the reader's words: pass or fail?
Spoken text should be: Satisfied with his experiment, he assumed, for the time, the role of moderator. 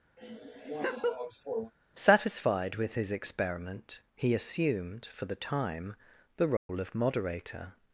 pass